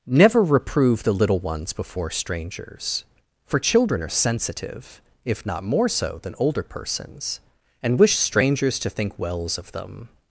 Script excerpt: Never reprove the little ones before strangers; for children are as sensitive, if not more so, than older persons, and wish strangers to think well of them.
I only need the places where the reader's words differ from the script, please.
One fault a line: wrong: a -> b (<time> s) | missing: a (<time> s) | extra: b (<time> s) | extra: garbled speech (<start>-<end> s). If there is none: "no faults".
missing: as (4.1 s)
wrong: well -> wells (9.2 s)